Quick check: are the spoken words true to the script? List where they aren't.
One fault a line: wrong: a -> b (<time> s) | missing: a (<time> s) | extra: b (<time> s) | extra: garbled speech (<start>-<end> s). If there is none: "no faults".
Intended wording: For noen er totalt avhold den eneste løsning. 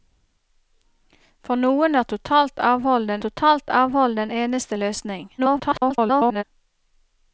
extra: totalt avhold den (3.3 s)
extra: garbled speech (5.4-6.4 s)